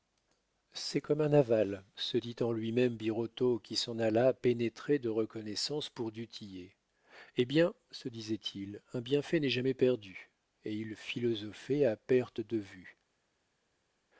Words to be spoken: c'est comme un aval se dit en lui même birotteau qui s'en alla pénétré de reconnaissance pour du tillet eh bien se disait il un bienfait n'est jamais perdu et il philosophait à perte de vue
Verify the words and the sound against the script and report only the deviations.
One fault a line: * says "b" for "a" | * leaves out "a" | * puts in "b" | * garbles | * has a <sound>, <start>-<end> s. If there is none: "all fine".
all fine